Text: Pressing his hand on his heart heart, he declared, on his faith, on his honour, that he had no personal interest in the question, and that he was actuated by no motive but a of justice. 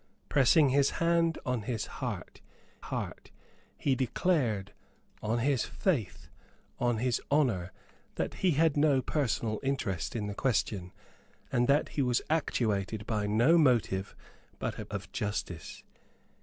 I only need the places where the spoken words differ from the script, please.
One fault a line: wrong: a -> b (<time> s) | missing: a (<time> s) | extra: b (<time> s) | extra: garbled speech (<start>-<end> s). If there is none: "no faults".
no faults